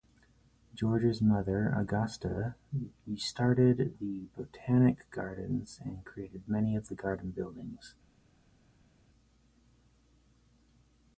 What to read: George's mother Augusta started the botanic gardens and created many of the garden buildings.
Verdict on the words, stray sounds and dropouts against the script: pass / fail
pass